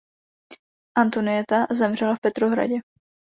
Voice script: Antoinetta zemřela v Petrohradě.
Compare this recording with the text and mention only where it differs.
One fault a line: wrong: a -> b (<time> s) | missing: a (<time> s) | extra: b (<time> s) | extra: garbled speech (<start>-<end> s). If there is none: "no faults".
no faults